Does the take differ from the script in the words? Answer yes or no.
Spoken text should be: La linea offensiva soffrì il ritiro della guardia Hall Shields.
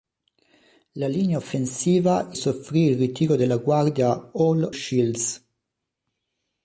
no